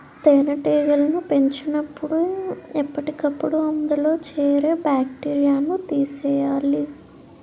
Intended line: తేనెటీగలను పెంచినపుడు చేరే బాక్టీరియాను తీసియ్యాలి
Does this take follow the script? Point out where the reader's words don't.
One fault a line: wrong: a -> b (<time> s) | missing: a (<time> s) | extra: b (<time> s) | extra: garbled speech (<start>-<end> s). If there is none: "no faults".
extra: ఎప్పటికప్పుడు అందులో (2.8 s)